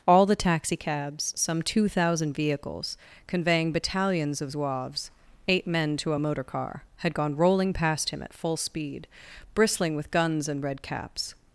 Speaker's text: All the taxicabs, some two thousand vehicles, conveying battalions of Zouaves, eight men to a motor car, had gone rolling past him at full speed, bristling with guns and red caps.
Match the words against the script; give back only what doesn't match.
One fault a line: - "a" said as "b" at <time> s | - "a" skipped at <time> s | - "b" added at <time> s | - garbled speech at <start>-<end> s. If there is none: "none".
none